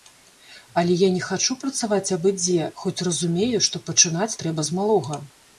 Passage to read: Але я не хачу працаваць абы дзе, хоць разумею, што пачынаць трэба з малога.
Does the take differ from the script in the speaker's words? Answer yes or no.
no